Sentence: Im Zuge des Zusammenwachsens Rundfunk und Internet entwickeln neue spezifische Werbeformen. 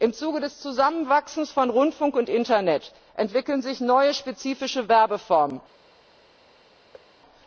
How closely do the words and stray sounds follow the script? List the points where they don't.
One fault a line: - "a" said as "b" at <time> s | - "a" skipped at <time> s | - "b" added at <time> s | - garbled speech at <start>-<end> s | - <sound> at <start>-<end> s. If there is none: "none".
- "von" added at 1.5 s
- "sich" added at 3.6 s
- thud at 6.9-7.1 s